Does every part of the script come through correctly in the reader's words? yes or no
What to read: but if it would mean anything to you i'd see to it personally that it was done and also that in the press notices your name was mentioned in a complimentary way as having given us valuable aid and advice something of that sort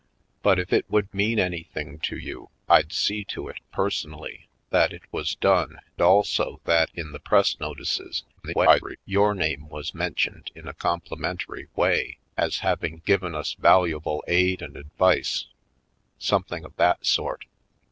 no